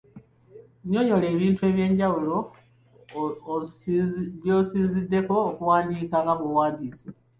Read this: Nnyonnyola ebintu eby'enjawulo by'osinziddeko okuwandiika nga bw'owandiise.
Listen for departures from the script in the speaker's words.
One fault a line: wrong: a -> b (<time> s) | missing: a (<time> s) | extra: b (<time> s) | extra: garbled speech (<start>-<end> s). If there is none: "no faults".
no faults